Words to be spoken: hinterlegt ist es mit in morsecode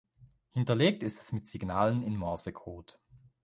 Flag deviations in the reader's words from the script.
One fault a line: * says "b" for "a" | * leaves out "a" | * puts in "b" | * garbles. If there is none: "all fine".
* puts in "signalen"